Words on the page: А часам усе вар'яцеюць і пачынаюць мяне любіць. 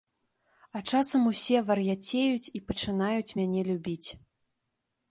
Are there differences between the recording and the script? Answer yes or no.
no